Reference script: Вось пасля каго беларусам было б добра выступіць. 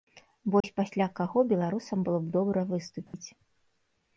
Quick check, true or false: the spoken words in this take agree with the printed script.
true